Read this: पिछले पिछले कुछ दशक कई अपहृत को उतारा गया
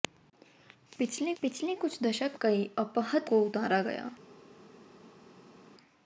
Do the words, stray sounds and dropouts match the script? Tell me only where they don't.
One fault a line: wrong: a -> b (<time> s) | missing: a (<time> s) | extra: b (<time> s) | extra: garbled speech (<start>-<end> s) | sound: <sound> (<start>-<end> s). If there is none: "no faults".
no faults